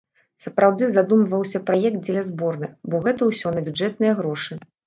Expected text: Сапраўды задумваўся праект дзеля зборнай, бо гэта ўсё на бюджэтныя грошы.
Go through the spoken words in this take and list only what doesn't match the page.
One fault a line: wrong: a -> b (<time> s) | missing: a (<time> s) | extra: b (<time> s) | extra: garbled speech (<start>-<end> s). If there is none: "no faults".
no faults